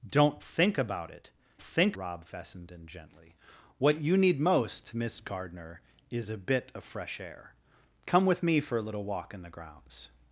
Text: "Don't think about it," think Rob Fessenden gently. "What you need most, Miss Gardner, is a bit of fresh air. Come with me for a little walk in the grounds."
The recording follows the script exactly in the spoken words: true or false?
true